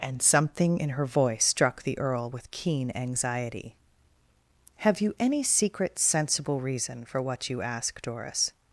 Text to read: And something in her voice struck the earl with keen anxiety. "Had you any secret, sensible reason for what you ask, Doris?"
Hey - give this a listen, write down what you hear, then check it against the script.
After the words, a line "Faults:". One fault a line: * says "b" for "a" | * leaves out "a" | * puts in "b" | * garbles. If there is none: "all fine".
And something in her voice struck the earl with keen anxiety. "Have you any secret, sensible reason for what you ask, Doris?"
Faults:
* says "Have" for "Had"